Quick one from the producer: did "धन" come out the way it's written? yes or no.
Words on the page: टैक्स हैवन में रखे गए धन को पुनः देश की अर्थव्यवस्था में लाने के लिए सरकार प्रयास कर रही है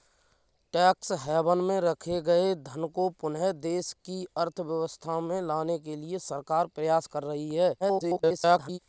yes